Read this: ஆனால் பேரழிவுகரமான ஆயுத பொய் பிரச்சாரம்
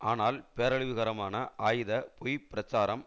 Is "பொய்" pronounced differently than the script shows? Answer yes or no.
no